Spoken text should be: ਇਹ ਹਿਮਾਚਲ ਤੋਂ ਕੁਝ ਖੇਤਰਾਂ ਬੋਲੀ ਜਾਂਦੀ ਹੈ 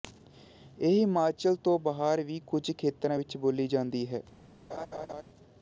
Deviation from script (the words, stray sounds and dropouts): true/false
true